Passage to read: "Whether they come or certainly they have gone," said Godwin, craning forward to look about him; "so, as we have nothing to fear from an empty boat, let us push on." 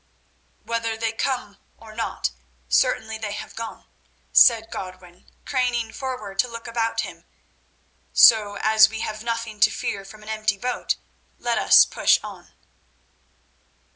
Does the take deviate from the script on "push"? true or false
false